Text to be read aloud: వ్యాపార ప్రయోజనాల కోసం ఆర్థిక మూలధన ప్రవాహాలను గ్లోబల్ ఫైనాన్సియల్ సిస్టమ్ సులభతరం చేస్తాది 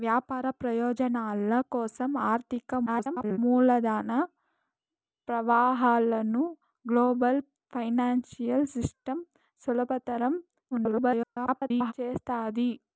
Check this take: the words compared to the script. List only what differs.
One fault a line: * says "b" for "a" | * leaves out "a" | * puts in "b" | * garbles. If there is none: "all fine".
* garbles
* garbles